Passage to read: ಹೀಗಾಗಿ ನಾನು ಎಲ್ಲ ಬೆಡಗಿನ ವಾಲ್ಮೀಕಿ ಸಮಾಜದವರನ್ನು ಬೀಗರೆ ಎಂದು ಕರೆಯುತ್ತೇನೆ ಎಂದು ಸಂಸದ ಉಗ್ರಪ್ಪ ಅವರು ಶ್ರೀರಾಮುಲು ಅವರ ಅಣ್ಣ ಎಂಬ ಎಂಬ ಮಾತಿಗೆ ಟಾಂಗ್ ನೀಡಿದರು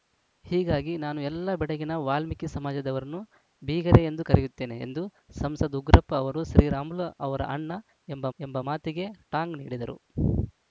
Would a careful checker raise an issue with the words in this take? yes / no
no